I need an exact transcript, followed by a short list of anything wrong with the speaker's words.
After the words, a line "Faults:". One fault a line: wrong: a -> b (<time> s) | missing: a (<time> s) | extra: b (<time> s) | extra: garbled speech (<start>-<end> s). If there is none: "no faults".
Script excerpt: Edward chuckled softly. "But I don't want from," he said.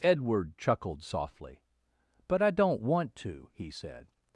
Edward chuckled softly. "But I don't want to," he said.
Faults:
wrong: from -> to (3.2 s)